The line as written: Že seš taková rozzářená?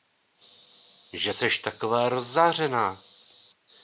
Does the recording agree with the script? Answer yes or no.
yes